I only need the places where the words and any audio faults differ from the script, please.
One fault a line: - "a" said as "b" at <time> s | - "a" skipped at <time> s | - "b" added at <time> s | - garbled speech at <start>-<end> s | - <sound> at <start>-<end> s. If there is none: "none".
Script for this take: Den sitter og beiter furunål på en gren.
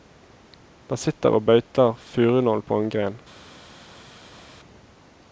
none